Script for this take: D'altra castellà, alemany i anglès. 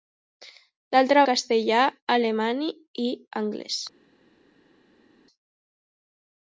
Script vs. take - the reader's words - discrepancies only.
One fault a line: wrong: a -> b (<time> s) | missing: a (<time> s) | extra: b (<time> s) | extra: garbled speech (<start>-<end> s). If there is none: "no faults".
no faults